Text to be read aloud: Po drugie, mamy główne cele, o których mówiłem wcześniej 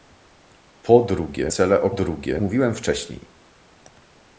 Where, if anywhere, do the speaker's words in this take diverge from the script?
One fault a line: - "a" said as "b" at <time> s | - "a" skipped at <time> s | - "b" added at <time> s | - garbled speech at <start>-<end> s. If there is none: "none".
- "mamy główne" skipped at 1.5 s
- "których" said as "drugie" at 1.9 s